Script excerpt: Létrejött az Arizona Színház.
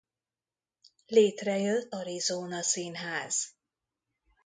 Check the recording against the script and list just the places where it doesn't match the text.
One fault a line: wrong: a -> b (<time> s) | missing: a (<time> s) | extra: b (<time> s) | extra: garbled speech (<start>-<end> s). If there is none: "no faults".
missing: az (1.9 s)